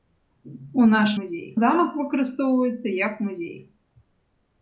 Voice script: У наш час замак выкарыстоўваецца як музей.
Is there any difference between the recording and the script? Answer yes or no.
yes